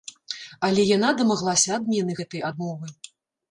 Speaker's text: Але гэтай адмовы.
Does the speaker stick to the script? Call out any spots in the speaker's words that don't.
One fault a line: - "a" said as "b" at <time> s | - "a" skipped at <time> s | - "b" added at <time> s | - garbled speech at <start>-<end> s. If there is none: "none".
- "яна дамаглася адмены" added at 1.0 s